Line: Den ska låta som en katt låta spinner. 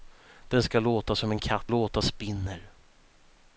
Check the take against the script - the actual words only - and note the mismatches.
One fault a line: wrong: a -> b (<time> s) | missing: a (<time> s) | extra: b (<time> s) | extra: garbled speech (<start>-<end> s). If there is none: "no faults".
no faults